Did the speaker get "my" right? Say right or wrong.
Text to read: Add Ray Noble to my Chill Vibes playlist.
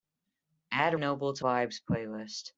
wrong